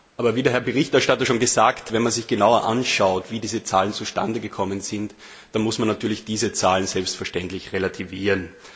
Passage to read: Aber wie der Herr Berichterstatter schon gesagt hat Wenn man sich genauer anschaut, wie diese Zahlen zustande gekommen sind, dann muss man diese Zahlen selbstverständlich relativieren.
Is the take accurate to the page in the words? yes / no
no